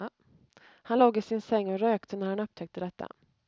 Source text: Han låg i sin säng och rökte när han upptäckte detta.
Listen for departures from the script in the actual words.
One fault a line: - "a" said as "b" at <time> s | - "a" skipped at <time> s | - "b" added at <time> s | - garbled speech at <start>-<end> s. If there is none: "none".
none